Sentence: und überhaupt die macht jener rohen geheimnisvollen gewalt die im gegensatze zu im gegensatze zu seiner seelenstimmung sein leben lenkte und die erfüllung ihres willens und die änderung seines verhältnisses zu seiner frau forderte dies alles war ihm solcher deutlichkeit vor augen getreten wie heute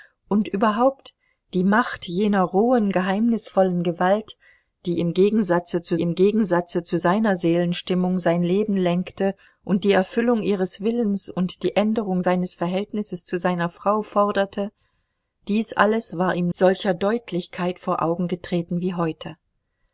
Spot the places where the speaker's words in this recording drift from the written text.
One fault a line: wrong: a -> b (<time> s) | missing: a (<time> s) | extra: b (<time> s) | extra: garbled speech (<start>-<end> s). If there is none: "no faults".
no faults